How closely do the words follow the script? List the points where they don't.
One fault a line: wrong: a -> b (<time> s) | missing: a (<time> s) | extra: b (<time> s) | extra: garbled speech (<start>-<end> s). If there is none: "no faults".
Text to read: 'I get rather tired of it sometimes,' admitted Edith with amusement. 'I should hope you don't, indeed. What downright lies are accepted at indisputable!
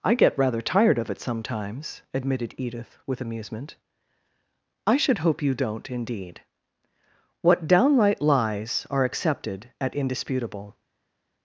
no faults